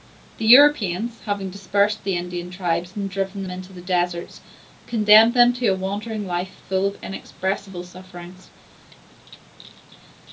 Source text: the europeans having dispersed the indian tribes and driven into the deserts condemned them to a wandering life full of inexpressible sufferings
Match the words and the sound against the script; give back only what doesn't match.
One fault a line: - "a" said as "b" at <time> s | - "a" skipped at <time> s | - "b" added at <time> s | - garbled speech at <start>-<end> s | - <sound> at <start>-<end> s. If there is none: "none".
none